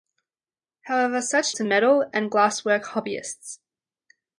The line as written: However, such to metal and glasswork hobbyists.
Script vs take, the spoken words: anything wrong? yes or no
no